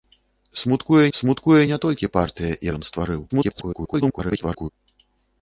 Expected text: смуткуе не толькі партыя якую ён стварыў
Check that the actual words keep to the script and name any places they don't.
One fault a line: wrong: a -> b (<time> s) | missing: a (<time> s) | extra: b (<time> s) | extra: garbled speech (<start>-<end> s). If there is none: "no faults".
extra: смуткуе (1.2 s)
missing: якую (2.5 s)
extra: garbled speech (3.3-4.7 s)